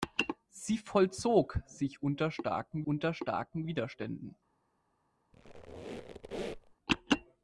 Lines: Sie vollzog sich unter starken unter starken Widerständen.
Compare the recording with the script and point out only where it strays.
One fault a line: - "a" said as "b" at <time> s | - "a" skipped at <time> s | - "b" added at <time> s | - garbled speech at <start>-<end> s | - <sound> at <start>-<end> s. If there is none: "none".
- squeak at 5.3-6.8 s